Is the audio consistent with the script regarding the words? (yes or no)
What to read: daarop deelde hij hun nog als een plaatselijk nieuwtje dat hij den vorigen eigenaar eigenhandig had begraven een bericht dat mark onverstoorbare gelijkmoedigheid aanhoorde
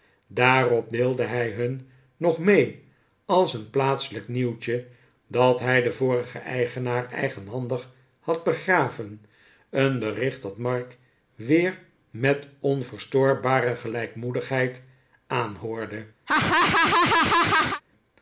no